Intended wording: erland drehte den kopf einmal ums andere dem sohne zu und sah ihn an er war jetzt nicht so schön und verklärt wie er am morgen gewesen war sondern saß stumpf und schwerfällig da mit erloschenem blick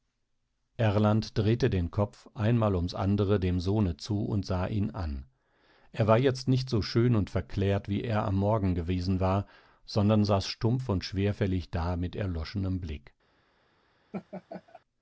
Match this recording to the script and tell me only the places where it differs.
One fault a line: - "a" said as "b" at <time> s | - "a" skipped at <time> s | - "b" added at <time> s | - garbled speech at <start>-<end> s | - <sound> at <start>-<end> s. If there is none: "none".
- laugh at 14.1-14.8 s